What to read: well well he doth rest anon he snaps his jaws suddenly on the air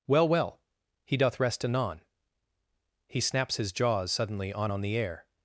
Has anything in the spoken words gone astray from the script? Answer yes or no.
yes